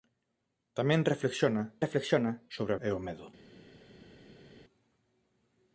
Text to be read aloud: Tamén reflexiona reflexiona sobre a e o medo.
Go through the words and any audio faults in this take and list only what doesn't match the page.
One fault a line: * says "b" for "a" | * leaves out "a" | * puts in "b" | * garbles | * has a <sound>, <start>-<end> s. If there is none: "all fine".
all fine